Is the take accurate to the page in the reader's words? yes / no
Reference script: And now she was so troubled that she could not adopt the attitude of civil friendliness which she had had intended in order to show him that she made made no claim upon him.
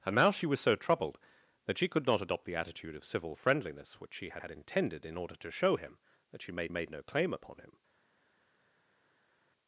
yes